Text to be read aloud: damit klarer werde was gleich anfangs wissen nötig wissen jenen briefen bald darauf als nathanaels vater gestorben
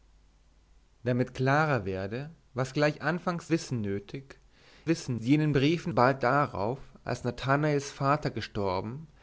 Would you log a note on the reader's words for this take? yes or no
no